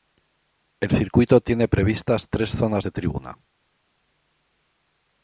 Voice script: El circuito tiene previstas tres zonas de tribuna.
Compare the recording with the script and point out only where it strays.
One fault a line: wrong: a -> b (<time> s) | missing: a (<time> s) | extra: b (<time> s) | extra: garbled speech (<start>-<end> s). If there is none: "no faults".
no faults